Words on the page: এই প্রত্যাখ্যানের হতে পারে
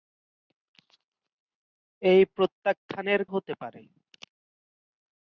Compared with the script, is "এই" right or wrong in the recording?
right